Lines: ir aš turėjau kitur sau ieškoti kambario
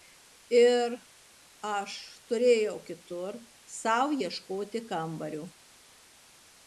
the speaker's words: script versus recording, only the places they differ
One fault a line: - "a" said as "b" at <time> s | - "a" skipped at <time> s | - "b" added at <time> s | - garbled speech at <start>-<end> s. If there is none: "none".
none